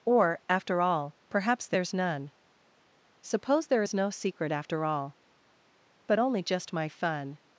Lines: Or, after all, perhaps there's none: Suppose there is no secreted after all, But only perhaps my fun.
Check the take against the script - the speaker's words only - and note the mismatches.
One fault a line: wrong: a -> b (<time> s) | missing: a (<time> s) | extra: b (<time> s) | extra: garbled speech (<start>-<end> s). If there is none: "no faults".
wrong: secreted -> secret (4.1 s)
wrong: perhaps -> just (6.4 s)